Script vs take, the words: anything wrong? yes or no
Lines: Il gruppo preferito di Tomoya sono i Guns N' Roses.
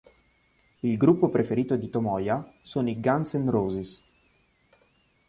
no